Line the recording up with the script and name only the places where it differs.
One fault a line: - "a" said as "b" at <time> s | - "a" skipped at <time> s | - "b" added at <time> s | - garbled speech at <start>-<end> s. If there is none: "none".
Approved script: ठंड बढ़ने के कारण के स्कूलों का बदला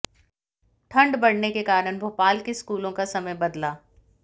- "भोपाल" added at 2.0 s
- "समय" added at 3.0 s